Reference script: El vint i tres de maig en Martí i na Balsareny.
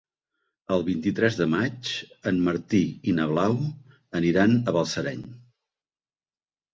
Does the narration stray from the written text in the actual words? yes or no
yes